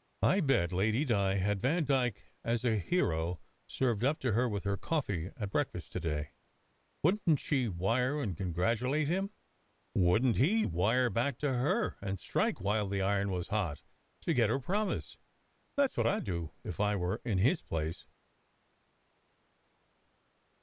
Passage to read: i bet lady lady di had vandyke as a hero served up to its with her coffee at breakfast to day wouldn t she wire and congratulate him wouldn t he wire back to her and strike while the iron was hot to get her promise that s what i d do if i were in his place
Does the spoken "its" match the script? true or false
false